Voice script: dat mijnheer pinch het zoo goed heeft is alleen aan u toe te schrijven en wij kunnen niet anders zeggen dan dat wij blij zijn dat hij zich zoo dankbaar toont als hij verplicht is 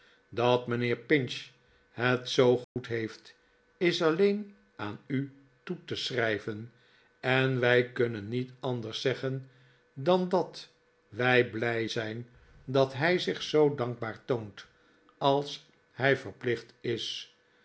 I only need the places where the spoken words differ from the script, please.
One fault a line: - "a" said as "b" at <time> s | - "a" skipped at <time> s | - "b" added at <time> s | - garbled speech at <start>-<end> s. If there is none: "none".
none